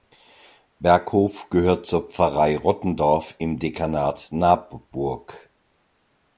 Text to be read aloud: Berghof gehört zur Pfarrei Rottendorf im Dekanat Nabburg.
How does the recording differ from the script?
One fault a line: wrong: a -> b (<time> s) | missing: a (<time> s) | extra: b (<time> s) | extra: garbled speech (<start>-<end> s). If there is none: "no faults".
no faults